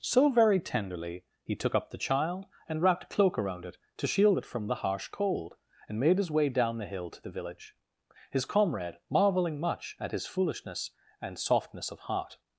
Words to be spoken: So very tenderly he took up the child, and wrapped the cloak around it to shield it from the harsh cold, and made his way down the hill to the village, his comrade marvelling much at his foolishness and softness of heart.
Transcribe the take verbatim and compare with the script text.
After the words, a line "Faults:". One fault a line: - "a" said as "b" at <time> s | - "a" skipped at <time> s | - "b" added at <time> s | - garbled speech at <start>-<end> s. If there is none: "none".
So very tenderly he took up the child, and wrapped a cloak around it to shield it from the harsh cold, and made his way down the hill to the village, his comrade marvelling much at his foolishness and softness of heart.
Faults:
- "the" said as "a" at 3.0 s